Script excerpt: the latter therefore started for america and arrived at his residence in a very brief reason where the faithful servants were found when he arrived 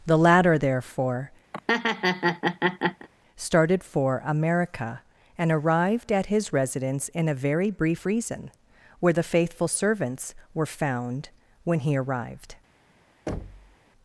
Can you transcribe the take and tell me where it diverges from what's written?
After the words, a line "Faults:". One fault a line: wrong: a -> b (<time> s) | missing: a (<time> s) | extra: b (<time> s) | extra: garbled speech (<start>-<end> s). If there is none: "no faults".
the latter therefore started for america and arrived at his residence in a very brief reason where the faithful servants were found when he arrived
Faults:
no faults